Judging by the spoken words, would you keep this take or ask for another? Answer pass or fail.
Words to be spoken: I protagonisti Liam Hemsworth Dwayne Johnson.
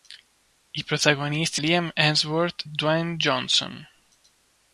pass